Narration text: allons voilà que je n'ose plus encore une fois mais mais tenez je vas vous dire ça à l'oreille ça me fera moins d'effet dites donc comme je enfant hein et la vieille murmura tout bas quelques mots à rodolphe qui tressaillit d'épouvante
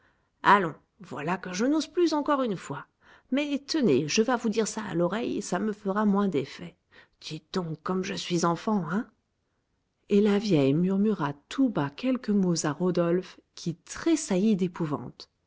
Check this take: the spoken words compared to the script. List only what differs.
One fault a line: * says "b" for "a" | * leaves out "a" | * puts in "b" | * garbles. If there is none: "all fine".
* leaves out "mais"
* puts in "suis"